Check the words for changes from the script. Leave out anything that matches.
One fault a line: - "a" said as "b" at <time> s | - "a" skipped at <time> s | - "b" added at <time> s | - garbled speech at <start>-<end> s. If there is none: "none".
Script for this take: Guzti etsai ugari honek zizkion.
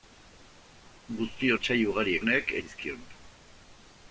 none